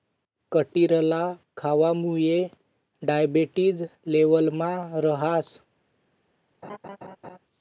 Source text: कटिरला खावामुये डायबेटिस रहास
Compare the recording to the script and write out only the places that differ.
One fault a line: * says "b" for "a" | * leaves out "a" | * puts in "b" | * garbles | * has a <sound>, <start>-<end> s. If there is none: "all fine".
* puts in "लेवलमा"
* has a laugh, 6.6-7.4 s